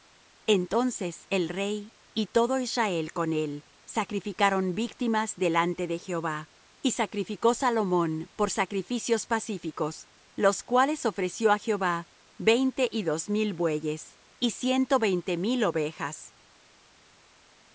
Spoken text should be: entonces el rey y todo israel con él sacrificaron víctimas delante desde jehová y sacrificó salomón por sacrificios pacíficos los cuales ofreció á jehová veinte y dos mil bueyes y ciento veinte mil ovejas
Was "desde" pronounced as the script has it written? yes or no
no